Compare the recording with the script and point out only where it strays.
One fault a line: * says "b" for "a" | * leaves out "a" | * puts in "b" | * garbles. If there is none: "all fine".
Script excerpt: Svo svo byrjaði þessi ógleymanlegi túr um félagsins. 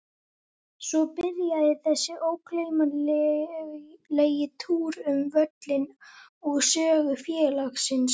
* leaves out "svo"
* puts in "völlinn og sögu"